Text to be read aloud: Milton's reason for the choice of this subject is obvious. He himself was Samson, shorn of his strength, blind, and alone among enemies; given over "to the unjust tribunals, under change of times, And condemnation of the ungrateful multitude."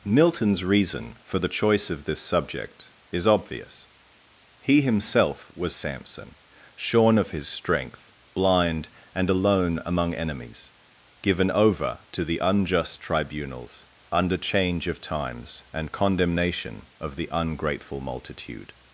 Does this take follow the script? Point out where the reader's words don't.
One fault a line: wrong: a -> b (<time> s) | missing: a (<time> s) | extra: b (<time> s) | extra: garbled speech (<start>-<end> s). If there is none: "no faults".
no faults